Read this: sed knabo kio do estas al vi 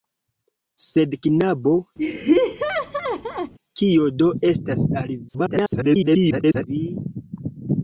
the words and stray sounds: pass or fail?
fail